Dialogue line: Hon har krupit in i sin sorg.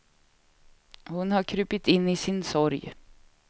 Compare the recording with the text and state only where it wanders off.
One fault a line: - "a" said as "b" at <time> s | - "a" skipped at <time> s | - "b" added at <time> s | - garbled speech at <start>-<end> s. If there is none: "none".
none